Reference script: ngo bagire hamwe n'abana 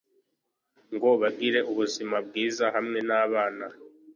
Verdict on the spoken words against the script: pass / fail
fail